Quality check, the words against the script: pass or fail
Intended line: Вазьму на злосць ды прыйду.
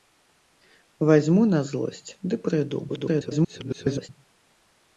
fail